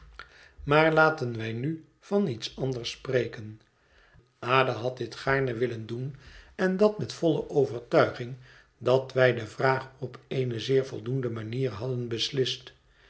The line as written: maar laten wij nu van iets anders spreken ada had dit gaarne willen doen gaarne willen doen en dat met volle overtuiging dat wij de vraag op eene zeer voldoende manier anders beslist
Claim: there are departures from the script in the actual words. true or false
true